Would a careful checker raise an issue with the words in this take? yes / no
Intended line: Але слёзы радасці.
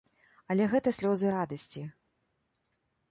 yes